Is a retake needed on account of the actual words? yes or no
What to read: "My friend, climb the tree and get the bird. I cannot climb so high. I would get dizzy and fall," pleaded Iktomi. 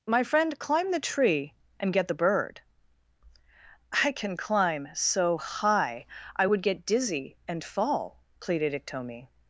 yes